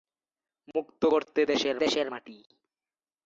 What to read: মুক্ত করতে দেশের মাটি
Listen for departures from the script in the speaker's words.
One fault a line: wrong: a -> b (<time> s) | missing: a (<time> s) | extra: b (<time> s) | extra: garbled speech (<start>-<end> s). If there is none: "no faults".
extra: দেশের (1.8 s)